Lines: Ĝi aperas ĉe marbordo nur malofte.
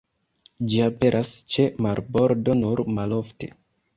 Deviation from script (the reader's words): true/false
false